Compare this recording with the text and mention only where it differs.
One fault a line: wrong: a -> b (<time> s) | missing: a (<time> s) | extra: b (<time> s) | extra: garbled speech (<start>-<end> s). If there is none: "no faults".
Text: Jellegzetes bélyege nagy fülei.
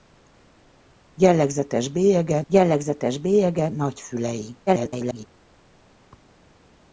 extra: jellegzetes bélyege (2.5 s)
extra: garbled speech (4.7-5.3 s)